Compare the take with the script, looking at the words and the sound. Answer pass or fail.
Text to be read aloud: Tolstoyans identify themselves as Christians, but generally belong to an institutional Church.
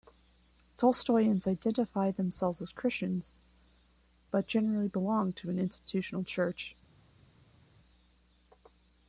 pass